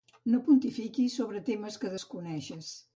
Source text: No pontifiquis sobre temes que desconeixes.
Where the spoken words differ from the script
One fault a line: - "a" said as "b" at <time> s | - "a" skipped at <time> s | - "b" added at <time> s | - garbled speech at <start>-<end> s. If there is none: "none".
none